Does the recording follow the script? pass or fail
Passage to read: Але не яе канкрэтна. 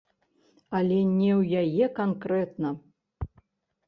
fail